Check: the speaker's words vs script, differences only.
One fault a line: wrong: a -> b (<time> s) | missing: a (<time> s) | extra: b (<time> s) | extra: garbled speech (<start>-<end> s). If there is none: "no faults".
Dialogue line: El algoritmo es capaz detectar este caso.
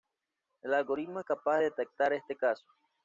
no faults